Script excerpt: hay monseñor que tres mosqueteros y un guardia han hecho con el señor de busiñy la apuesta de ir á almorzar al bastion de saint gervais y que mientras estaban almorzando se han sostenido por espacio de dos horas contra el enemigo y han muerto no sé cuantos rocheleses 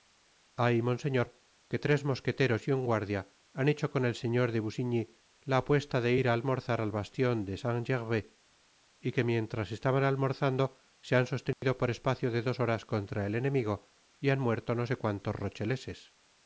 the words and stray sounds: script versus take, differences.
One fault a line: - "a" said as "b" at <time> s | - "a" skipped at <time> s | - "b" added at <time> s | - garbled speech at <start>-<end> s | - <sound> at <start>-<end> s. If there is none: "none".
- dropout at 11.5-11.6 s